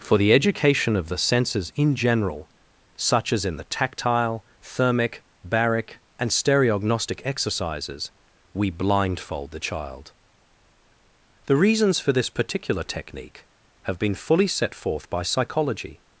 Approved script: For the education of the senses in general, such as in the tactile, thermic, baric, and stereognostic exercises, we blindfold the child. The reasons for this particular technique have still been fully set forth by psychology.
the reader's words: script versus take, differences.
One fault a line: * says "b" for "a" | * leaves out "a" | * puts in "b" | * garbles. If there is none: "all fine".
* leaves out "still"